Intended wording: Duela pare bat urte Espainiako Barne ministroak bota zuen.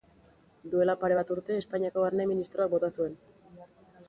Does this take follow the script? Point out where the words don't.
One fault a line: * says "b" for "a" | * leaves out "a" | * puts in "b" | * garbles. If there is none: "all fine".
all fine